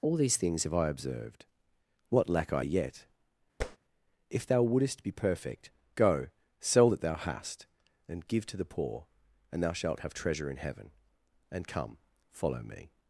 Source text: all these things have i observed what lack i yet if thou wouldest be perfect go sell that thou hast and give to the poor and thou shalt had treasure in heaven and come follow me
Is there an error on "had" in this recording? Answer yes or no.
yes